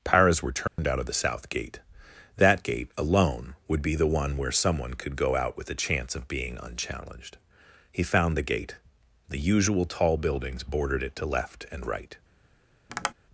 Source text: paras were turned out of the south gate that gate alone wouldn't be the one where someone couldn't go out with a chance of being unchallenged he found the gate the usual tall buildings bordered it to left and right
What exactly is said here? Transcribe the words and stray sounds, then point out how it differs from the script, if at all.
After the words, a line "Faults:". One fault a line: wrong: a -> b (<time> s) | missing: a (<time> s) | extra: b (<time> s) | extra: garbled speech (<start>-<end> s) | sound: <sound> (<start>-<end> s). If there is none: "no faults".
paras were turned out of the south gate that gate alone would be the one where someone could go out with a chance of being unchallenged he found the gate the usual tall buildings bordered it to left and right
Faults:
sound: dropout (0.7-0.8 s)
wrong: wouldn't -> would (3.7 s)
wrong: couldn't -> could (4.9 s)
sound: tap (12.9-13.1 s)